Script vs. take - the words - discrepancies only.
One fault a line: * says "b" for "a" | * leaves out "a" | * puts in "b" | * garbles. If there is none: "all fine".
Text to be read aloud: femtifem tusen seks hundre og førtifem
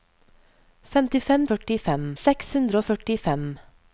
* says "førtifem" for "tusen"